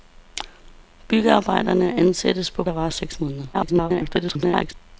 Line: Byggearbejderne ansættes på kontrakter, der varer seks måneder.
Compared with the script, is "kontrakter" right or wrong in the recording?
wrong